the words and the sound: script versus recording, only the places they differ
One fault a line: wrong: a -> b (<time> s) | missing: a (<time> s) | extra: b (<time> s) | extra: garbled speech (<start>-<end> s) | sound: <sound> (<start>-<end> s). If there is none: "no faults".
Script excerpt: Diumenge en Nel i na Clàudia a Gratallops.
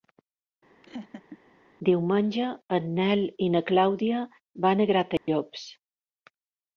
sound: laugh (0.8-1.4 s)
extra: van (4.7 s)
sound: dropout (5.2-5.3 s)